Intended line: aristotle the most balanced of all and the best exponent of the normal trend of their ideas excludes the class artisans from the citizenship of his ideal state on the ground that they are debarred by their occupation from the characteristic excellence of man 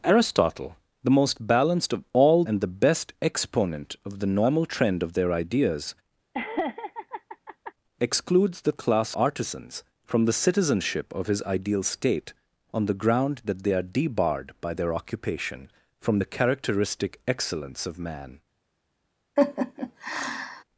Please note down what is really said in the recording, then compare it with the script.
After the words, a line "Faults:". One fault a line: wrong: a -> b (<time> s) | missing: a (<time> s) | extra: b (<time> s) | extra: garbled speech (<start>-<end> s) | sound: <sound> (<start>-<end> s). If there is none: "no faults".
aristotle the most balanced of all and the best exponent of the normal trend of their ideas excludes the class artisans from the citizenship of his ideal state on the ground that they are debarred by their occupation from the characteristic excellence of man
Faults:
sound: laugh (6.3-7.7 s)
sound: laugh (19.4-20.6 s)